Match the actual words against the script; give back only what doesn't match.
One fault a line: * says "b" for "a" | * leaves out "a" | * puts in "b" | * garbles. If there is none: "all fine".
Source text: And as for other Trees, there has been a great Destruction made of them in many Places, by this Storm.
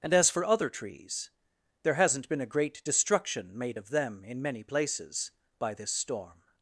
* says "hasn't" for "has"